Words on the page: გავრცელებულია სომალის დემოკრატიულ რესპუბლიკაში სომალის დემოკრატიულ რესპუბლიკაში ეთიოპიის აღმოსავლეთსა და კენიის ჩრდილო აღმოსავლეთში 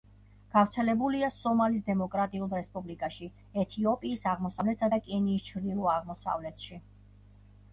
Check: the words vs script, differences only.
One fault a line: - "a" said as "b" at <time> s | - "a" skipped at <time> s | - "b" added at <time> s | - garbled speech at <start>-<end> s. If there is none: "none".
- "სომალის დემოკრატიულ რესპუბლიკაში" skipped at 3.3 s